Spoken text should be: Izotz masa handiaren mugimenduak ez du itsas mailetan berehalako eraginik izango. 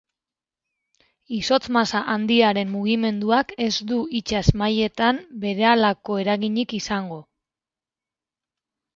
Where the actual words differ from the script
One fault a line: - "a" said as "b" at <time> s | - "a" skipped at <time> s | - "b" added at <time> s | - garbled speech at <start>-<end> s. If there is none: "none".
none